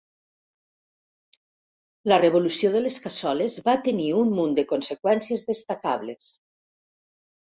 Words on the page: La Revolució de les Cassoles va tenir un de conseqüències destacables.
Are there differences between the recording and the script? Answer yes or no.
yes